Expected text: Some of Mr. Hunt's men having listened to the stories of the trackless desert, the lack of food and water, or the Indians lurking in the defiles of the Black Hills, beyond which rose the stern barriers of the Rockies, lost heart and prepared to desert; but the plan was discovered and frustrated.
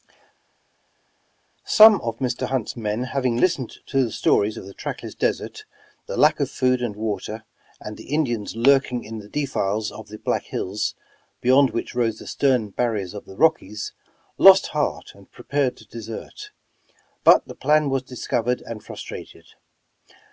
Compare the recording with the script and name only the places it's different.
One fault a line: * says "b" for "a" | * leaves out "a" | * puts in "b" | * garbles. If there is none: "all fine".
* says "and" for "or"